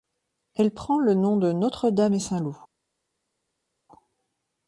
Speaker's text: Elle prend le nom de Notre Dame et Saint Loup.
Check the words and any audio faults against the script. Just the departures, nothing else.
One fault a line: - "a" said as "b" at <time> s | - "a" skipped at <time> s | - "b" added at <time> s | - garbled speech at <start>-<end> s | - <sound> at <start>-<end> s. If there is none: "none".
none